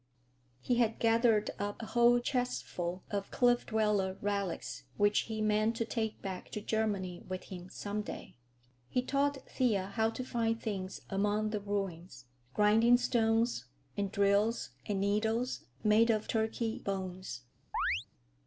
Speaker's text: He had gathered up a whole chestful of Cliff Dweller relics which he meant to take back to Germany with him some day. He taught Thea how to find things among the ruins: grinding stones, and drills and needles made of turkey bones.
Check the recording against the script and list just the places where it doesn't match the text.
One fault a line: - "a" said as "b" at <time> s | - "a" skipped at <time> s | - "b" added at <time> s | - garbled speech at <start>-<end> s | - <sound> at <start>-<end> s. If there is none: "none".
- chirp at 17.7-18.1 s